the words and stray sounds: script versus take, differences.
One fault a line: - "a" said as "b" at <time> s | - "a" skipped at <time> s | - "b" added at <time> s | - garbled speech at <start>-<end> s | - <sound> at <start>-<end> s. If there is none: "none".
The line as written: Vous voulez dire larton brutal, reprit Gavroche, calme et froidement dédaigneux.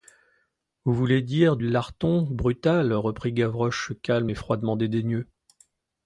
none